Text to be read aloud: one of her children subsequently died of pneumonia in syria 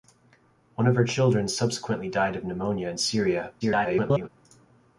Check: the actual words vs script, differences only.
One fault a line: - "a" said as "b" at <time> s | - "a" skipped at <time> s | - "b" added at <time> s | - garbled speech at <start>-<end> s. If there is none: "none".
- garbled speech at 3.6-4.3 s